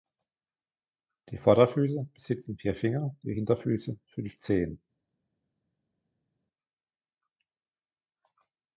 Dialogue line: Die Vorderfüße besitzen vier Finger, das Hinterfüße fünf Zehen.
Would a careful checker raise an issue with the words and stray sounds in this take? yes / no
yes